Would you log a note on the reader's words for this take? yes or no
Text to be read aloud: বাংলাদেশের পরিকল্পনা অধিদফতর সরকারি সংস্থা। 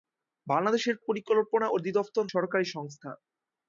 no